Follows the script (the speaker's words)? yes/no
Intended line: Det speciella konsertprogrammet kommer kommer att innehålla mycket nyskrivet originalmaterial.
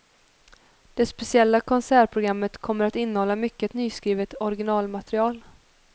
no